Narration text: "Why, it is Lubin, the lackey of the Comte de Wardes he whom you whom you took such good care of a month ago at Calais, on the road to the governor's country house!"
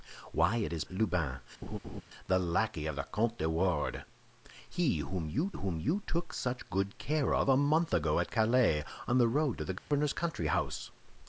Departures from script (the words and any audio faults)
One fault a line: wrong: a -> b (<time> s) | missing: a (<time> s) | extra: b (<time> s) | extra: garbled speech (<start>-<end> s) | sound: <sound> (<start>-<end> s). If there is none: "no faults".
sound: laugh (1.6-2.0 s)
sound: dropout (9.8-9.9 s)